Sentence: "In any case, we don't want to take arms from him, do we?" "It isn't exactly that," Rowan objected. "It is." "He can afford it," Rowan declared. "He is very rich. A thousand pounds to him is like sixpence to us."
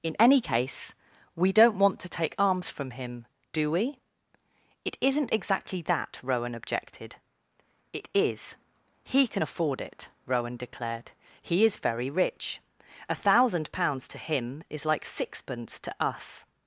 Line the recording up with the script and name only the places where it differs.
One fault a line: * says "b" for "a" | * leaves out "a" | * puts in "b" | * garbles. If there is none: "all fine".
all fine